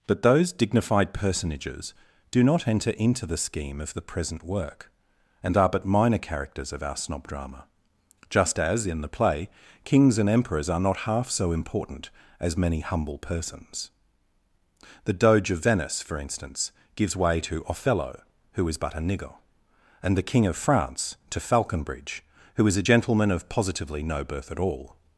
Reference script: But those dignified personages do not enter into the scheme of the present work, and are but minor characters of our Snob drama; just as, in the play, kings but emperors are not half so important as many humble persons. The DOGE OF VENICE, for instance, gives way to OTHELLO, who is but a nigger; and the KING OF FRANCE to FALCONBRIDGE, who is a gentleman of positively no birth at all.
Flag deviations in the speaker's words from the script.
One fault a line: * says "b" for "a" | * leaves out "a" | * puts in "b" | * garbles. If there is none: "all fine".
* says "and" for "but"